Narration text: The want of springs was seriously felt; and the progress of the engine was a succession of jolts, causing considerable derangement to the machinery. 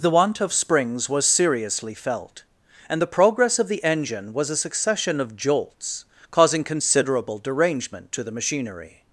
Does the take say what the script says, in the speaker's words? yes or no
yes